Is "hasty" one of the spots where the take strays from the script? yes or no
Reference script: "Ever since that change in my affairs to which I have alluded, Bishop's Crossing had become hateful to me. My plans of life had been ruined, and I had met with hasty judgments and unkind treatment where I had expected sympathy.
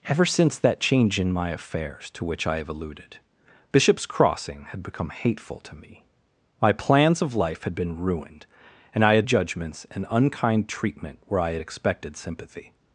yes